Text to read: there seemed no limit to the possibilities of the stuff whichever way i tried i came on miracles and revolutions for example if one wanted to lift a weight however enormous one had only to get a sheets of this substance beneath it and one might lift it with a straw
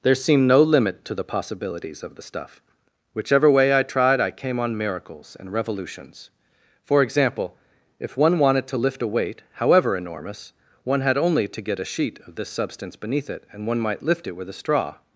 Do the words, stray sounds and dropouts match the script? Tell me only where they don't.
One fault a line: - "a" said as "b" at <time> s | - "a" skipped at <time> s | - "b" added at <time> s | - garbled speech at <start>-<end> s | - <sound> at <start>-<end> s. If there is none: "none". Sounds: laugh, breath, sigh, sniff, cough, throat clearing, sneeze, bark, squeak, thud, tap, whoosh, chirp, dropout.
- "sheets" said as "sheet" at 11.8 s